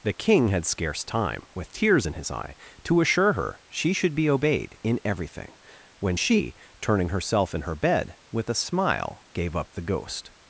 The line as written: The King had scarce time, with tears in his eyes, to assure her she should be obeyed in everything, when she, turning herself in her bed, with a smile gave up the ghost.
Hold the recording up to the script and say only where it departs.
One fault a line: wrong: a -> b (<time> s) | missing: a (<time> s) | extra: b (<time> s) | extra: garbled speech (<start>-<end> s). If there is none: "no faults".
wrong: eyes -> eye (2.3 s)